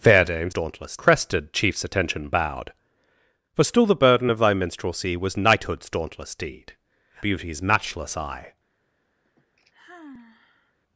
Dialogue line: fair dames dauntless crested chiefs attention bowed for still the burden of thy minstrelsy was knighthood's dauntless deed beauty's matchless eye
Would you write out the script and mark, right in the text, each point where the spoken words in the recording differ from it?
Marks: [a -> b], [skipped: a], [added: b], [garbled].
fair dames dauntless crested chiefs attention bowed for still the burden of thy minstrelsy was knighthood's dauntless deed beauty's matchless eye